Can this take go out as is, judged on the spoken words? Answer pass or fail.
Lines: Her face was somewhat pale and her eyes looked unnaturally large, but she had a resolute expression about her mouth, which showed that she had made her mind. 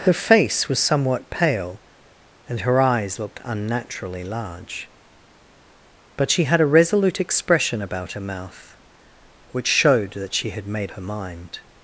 pass